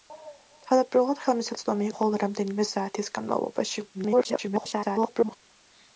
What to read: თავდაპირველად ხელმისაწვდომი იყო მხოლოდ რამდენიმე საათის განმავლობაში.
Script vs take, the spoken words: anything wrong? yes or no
yes